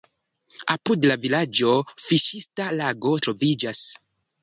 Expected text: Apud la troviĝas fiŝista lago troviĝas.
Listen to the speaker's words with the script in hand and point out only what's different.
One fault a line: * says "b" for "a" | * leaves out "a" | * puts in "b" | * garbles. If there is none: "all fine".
* says "vilaĝo" for "troviĝas"